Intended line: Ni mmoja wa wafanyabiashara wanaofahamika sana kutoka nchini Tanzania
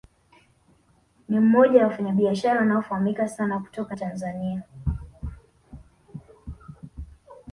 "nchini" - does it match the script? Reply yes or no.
no